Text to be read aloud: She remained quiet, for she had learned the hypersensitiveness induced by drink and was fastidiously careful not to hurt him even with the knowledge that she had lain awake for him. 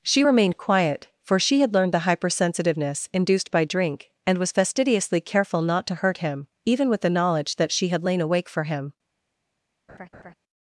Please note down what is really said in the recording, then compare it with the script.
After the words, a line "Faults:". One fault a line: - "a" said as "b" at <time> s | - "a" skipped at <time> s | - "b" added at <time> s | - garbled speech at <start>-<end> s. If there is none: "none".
She remained quiet, for she had learned the hypersensitiveness induced by drink and was fastidiously careful not to hurt him even with the knowledge that she had lain awake for him.
Faults:
none